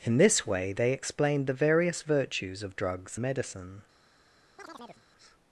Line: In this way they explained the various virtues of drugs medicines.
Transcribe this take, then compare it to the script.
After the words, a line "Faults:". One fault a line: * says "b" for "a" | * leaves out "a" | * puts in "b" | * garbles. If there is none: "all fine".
In this way they explained the various virtues of drugs medicines.
Faults:
all fine